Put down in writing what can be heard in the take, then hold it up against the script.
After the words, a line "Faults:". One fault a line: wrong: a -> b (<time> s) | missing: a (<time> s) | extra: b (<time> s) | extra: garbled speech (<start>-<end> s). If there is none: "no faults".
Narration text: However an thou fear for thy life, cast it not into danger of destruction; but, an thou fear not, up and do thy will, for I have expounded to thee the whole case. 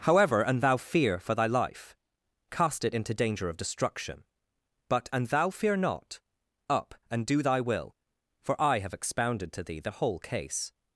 However an thou fear for thy life, cast it into danger of destruction; but, an thou fear not, up and do thy will, for I have expounded to thee the whole case.
Faults:
missing: not (2.9 s)